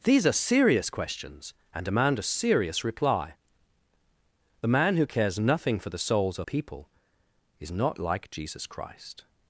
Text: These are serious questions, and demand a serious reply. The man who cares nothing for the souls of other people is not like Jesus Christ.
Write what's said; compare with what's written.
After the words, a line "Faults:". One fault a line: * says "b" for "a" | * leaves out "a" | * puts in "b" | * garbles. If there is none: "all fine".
These are serious questions, and demand a serious reply. The man who cares nothing for the souls of people is not like Jesus Christ.
Faults:
* leaves out "other"